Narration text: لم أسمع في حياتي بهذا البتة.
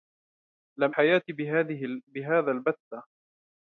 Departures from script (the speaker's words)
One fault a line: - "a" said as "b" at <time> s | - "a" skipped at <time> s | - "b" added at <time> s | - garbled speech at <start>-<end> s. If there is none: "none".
- "أسمع في" skipped at 1.0 s